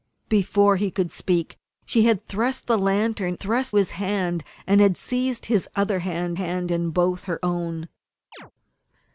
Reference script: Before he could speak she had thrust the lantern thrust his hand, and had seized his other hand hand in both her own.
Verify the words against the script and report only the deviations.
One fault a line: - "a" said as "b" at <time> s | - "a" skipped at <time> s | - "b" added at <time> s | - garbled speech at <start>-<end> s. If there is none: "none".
none